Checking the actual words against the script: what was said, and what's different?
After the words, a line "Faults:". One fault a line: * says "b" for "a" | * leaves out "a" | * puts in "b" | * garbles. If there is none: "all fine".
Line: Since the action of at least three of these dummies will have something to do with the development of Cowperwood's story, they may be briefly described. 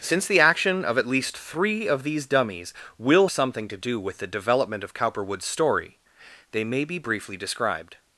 Since the action of at least three of these dummies will something to do with the development of Cowperwood's story, they may be briefly described.
Faults:
* leaves out "have"